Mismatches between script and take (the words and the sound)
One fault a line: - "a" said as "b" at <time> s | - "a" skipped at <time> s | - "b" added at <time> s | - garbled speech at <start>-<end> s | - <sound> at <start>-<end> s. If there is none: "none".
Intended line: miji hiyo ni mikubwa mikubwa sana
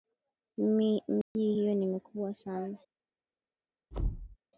- dropout at 1.2-1.4 s
- "mikubwa" skipped at 2.3 s
- thud at 3.9-4.4 s